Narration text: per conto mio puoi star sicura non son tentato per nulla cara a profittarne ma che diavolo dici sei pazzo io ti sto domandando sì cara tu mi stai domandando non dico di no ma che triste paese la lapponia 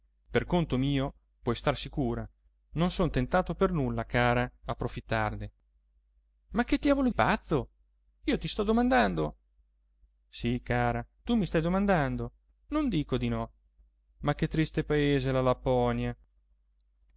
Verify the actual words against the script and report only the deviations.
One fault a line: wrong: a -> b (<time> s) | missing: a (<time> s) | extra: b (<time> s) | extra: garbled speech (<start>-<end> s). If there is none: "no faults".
missing: dici sei (7.1 s)